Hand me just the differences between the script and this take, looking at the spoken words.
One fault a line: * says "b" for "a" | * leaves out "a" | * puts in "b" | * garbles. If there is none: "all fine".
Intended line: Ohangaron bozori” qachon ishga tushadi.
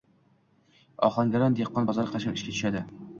* puts in "dehqon"